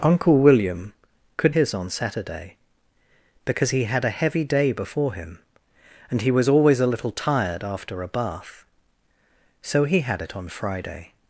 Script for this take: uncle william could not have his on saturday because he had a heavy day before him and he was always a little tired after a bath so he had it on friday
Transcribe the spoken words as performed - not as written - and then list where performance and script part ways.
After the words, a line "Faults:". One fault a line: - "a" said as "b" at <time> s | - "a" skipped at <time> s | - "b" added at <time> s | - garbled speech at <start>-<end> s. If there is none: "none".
uncle william could his on saturday because he had a heavy day before him and he was always a little tired after a bath so he had it on friday
Faults:
- "not have" skipped at 1.6 s